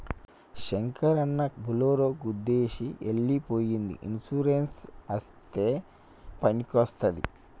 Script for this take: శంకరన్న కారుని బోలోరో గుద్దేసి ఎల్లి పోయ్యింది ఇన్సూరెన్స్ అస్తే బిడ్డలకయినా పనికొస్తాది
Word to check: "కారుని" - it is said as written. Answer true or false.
false